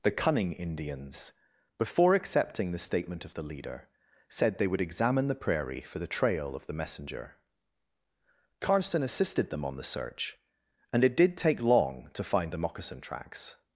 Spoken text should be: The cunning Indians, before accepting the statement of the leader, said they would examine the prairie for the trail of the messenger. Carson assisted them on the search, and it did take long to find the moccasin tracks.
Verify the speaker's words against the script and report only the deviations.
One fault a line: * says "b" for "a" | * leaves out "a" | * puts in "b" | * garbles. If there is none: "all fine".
all fine